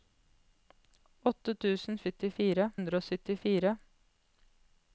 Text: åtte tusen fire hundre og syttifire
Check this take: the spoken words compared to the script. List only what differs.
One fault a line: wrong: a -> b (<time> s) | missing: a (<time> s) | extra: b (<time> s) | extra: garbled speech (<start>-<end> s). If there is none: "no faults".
wrong: fire -> syttifire (2.0 s)